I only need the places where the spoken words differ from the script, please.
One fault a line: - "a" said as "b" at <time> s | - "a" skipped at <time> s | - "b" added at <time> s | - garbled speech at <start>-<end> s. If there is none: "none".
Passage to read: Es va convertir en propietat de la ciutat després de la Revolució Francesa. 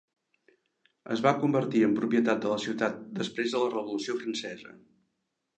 none